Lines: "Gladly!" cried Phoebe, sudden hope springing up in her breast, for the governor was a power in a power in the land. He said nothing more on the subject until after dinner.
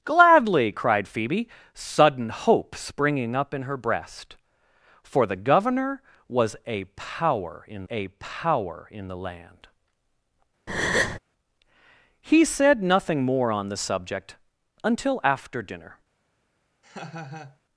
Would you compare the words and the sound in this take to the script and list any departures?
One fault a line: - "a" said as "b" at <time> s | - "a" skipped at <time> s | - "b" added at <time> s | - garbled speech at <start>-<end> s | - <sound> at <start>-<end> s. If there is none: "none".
- breath at 10.7-11.2 s
- laugh at 16.8-17.6 s